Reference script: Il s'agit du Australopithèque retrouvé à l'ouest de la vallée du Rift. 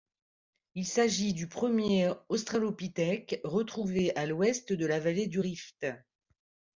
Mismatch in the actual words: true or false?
true